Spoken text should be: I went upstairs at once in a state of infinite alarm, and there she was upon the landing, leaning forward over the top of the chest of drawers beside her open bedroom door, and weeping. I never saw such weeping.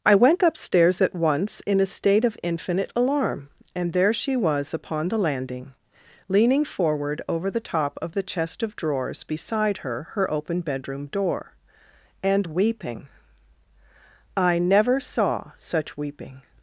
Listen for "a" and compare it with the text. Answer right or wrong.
right